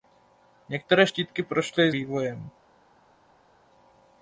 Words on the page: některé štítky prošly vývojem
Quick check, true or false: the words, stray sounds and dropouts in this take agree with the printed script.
true